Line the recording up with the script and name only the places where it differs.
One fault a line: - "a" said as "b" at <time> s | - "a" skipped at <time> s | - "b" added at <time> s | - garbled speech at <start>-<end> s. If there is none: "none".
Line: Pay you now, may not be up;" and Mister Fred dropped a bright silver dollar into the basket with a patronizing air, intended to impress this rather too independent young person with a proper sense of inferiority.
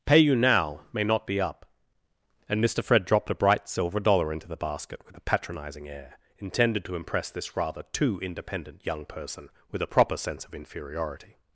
none